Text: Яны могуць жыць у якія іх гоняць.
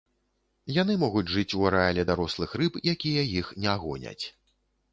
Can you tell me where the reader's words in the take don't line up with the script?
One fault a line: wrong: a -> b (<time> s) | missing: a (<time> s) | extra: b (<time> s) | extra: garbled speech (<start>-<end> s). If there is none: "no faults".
extra: арэале дарослых рыб (1.7 s)
extra: не (3.7 s)